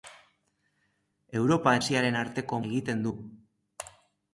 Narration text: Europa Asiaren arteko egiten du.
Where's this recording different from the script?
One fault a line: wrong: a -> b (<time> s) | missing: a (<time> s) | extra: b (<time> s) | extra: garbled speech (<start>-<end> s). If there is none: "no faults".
no faults